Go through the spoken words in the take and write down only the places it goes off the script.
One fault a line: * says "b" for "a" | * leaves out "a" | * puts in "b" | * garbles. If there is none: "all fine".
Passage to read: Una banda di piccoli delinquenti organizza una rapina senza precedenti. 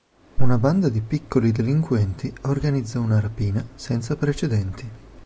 all fine